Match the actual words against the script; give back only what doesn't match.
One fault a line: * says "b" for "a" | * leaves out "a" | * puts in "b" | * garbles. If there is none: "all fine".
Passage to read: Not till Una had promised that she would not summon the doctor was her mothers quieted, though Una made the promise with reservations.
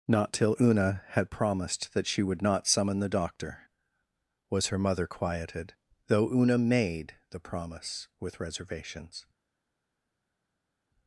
* says "mother" for "mothers"